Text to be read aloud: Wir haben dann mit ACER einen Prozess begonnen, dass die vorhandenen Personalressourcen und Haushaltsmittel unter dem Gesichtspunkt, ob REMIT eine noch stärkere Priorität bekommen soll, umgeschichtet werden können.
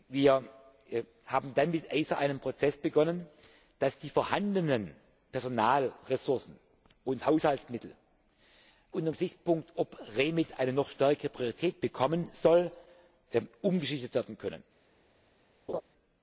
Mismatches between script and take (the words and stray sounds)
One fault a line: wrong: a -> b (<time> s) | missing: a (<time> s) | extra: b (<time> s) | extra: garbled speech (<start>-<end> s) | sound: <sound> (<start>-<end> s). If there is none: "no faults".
sound: laugh (15.7-15.8 s)